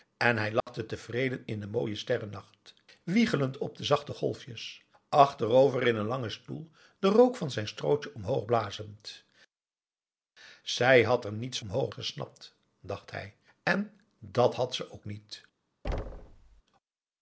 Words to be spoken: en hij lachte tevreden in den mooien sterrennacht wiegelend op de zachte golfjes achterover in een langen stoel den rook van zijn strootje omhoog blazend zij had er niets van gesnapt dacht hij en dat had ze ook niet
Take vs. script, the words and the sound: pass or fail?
fail